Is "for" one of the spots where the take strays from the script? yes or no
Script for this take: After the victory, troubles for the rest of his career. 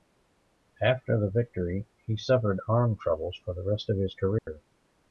no